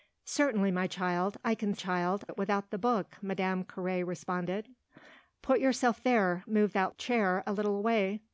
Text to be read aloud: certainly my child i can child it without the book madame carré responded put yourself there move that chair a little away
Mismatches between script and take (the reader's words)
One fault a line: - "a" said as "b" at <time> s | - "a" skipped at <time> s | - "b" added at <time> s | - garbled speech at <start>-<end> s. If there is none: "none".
none